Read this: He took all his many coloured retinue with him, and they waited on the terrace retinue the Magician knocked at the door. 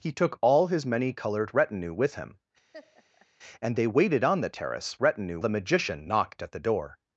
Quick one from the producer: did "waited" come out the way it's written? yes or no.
yes